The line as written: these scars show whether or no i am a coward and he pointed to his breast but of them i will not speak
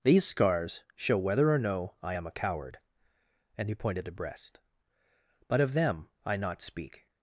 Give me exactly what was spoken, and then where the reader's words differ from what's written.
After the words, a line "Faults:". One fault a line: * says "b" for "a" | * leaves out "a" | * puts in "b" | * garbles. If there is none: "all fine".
these scars show whether or no i am a coward and he pointed to breast but of them i not speak
Faults:
* leaves out "his"
* leaves out "will"